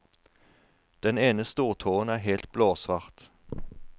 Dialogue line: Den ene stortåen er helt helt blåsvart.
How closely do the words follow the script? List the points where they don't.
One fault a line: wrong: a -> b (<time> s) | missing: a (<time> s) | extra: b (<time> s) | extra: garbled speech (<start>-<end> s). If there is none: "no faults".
missing: helt (2.5 s)